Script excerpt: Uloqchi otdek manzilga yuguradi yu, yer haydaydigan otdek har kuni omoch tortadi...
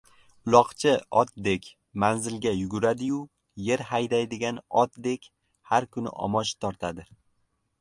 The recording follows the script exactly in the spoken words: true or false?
true